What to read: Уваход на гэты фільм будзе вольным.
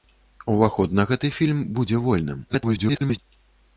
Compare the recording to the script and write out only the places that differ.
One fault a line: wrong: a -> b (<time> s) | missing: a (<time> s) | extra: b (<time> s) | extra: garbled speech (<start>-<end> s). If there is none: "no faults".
extra: garbled speech (2.5-3.2 s)